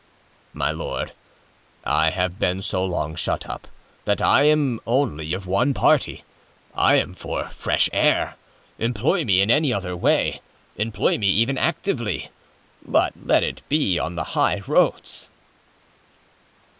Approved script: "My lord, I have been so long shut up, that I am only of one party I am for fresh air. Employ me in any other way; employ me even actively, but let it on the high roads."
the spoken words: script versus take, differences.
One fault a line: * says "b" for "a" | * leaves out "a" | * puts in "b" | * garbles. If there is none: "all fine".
* puts in "be"